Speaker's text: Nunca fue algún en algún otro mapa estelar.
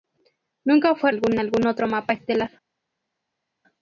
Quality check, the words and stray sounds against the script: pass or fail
pass